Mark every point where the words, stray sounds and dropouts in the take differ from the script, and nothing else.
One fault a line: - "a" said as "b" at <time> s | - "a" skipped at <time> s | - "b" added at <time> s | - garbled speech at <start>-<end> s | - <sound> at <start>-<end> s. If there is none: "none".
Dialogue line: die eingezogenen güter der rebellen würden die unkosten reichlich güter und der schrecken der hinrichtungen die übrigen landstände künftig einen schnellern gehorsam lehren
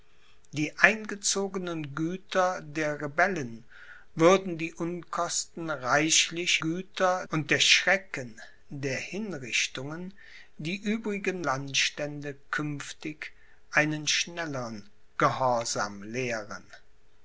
none